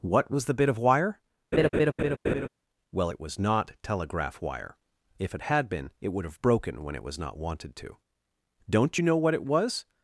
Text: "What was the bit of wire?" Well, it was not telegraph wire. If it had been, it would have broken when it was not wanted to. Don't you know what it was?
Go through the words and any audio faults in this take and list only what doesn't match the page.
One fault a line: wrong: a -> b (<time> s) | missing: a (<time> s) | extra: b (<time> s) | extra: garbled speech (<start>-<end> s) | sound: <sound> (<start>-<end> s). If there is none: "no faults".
sound: laugh (1.5-2.5 s)